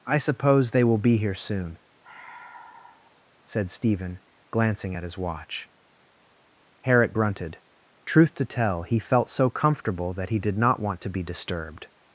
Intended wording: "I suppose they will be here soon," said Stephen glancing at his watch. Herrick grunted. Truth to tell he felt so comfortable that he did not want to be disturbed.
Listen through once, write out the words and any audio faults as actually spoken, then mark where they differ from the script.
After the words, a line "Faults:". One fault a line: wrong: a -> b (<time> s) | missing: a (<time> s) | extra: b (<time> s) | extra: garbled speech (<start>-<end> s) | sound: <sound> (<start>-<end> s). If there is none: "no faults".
"I suppose they will be here soon," said Stephen glancing at his watch. Herrick grunted. Truth to tell he felt so comfortable that he did not want to be disturbed.
Faults:
sound: sigh (2.0-3.2 s)